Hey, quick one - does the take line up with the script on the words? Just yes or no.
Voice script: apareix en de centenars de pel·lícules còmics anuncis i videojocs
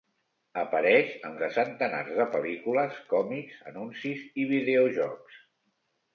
yes